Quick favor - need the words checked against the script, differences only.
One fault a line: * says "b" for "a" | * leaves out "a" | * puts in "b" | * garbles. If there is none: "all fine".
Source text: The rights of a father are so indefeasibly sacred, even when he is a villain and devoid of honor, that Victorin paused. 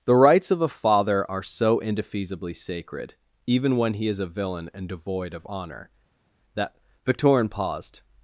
all fine